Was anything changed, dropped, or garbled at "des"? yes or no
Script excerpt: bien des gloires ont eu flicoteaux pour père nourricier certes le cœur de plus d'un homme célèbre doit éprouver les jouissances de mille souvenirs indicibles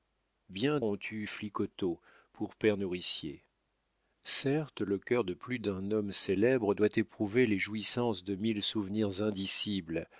yes